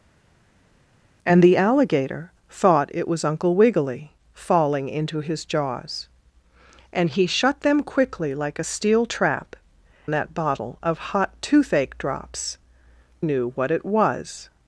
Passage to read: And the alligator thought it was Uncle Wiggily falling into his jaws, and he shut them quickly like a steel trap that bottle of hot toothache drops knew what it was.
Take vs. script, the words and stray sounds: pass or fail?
pass